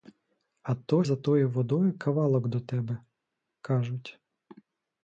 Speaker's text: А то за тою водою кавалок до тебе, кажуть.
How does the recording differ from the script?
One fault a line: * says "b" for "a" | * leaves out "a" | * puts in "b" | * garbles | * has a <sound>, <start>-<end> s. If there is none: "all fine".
all fine